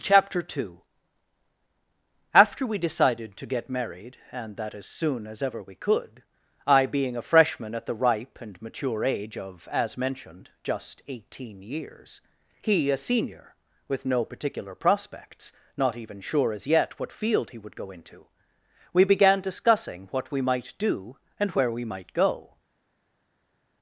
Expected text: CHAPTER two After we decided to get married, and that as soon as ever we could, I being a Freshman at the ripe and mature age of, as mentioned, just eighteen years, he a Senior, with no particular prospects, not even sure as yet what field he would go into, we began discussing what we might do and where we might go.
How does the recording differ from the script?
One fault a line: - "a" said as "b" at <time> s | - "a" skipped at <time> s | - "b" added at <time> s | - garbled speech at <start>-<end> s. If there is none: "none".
none